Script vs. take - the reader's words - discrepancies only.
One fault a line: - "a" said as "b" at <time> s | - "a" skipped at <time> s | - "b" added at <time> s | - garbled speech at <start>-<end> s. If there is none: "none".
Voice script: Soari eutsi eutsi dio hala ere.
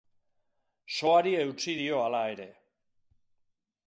- "eutsi" skipped at 1.8 s